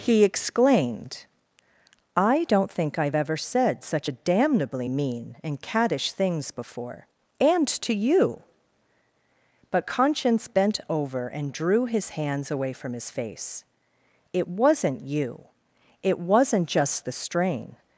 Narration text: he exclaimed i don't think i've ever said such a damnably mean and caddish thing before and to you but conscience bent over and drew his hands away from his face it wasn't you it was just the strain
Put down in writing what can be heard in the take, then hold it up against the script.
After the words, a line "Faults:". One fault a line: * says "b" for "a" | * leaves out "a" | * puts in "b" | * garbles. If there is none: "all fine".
he exclaimed i don't think i've ever said such a damnably mean and caddish things before and to you but conscience bent over and drew his hands away from his face it wasn't you it wasn't just the strain
Faults:
* says "things" for "thing"
* says "wasn't" for "was"